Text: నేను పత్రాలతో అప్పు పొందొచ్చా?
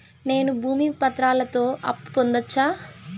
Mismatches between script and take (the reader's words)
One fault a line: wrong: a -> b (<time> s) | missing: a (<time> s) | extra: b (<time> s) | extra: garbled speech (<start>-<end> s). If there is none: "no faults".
extra: భూమి (0.6 s)